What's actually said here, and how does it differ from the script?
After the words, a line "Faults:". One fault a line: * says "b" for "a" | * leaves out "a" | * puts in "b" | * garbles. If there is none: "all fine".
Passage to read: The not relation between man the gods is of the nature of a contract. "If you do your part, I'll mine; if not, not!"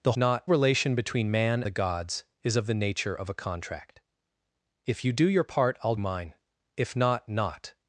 The not relation between man the gods is of the nature of a contract. "If you do your part, I'll mine; if not, not!"
Faults:
all fine